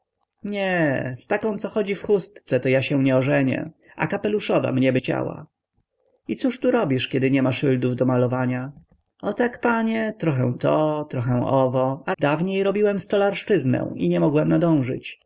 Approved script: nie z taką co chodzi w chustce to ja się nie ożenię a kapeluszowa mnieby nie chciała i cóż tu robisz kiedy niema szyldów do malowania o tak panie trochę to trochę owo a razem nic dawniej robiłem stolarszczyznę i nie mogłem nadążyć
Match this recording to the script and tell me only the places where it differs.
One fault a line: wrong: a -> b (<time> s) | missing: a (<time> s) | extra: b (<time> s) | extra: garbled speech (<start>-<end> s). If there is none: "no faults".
missing: nie (5.0 s)
missing: razem nic (12.1 s)